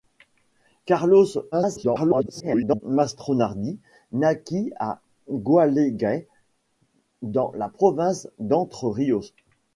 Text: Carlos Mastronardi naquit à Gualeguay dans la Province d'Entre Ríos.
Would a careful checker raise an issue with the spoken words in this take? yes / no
yes